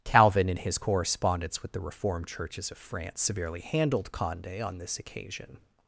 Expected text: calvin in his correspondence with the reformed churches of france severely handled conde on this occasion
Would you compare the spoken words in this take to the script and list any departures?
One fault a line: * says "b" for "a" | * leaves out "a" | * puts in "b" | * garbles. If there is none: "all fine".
all fine